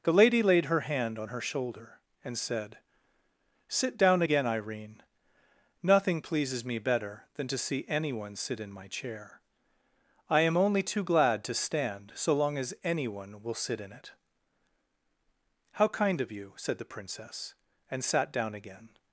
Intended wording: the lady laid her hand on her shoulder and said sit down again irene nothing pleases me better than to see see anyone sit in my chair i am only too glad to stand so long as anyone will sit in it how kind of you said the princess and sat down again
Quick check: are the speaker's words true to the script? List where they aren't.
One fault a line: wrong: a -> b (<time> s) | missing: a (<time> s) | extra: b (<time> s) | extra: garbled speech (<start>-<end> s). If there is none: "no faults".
missing: see (7.8 s)